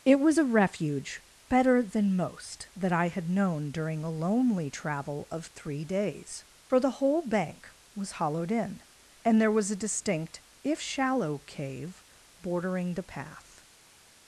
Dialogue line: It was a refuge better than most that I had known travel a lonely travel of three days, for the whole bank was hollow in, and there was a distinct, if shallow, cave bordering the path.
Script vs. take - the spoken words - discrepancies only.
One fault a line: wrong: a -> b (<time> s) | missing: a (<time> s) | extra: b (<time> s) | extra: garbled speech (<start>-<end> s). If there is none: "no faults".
wrong: travel -> during (3.7 s)
wrong: hollow -> hollowed (8.1 s)